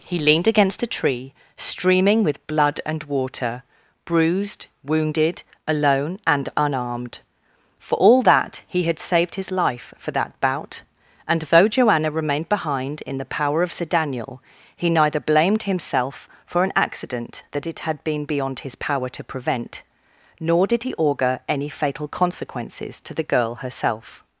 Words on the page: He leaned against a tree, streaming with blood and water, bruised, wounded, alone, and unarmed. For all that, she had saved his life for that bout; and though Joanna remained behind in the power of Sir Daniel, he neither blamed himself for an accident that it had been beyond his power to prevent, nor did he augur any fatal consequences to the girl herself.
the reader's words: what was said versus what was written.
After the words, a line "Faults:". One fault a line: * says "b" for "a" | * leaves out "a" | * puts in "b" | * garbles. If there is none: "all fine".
He leaned against a tree, streaming with blood and water, bruised, wounded, alone, and unarmed. For all that, he had saved his life for that bout; and though Joanna remained behind in the power of Sir Daniel, he neither blamed himself for an accident that it had been beyond his power to prevent, nor did he augur any fatal consequences to the girl herself.
Faults:
* says "he" for "she"